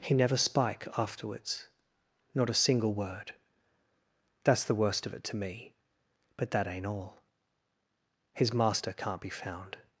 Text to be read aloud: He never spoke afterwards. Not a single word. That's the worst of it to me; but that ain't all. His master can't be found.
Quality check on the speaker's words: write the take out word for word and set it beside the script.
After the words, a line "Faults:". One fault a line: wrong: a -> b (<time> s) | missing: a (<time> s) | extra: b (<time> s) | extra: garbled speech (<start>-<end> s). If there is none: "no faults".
He never spike afterwards. Not a single word. That's the worst of it to me; but that ain't all. His master can't be found.
Faults:
wrong: spoke -> spike (0.3 s)